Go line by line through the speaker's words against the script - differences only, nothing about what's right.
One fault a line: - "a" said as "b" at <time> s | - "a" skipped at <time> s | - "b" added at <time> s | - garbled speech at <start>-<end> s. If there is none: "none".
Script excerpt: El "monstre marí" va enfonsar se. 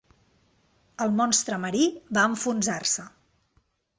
none